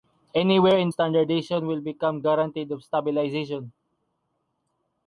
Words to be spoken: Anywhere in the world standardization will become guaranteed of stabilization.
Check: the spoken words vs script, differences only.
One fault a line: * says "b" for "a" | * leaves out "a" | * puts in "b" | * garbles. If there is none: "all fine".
* leaves out "the world"